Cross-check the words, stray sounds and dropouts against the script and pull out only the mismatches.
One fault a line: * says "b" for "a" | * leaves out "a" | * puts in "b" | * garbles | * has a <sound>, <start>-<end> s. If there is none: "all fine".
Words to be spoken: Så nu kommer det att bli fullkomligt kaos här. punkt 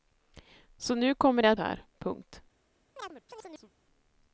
* leaves out "bli fullkomligt kaos"
* has a chirp, 3.0-3.7 s